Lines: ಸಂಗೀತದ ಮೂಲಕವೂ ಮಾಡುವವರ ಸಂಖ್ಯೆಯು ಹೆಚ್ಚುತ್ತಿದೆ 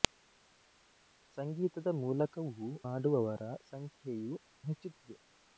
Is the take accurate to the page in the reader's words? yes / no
yes